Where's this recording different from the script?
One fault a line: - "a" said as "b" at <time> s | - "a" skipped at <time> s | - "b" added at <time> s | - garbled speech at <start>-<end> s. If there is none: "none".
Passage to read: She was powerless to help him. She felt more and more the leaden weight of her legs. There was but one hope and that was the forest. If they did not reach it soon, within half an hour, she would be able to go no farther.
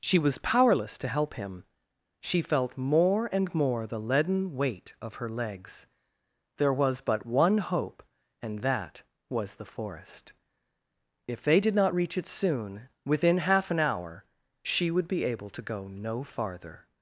none